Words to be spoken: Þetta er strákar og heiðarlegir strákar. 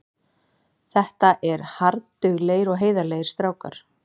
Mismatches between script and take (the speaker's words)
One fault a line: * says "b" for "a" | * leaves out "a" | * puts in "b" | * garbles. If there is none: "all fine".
* says "harðduglegir" for "strákar"